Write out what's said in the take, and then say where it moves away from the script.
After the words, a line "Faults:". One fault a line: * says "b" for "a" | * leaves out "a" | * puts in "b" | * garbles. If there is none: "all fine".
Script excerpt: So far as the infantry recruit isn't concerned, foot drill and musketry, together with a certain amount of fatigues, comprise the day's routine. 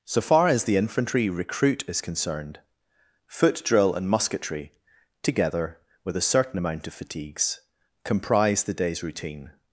So far as the infantry recruit is concerned, foot drill and musketry, together with a certain amount of fatigues, comprise the day's routine.
Faults:
* says "is" for "isn't"